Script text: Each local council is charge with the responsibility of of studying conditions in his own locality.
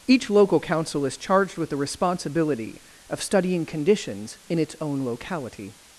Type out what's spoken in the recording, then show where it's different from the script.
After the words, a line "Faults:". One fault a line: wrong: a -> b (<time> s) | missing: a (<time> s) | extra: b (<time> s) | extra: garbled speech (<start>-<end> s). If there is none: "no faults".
Each local council is charged with the responsibility of studying conditions in its own locality.
Faults:
wrong: charge -> charged (1.2 s)
missing: of (3.2 s)
wrong: his -> its (4.6 s)